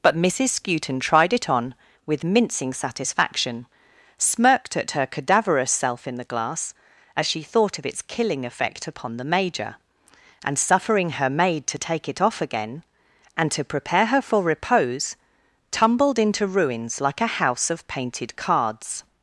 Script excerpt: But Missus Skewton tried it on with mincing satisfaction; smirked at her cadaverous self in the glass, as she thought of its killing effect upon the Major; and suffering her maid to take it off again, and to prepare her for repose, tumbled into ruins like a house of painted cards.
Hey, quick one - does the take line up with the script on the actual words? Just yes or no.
yes